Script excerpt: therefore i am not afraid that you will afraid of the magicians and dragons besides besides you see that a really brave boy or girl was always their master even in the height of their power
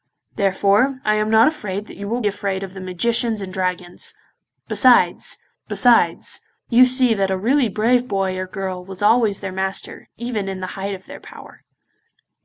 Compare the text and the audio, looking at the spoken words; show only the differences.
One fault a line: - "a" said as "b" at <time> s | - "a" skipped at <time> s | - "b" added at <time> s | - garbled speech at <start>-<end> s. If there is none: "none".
none